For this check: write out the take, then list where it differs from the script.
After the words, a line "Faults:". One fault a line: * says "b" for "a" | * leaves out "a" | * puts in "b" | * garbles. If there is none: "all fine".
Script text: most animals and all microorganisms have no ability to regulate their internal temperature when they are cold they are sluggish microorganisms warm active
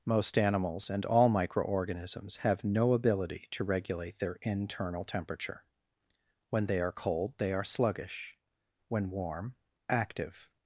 most animals and all microorganisms have no ability to regulate their internal temperature when they are cold they are sluggish when warm active
Faults:
* says "when" for "microorganisms"